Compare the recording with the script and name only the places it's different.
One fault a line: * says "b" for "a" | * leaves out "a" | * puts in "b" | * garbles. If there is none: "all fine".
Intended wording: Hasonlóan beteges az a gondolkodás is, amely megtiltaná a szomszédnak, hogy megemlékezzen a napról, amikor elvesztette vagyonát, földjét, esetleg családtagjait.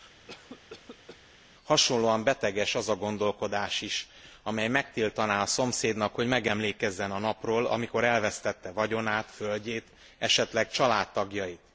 all fine